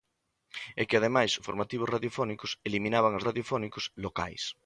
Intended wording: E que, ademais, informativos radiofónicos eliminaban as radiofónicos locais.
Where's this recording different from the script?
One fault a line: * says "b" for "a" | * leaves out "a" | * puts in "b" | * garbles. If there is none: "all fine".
all fine